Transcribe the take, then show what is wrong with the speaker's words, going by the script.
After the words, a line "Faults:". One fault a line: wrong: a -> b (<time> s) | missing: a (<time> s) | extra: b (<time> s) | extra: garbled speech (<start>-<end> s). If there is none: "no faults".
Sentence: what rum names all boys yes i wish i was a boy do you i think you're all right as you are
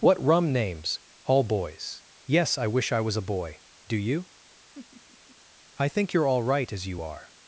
what rum names all boys yes i wish i was a boy do you i think you're all right as you are
Faults:
no faults